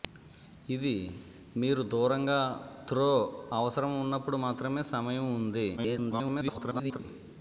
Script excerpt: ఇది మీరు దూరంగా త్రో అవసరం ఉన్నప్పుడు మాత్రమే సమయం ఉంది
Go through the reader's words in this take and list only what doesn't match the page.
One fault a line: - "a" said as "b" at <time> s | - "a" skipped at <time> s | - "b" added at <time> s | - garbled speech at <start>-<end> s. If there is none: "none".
- garbled speech at 5.8-7.0 s